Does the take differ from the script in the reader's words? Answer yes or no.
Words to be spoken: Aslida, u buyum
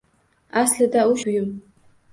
no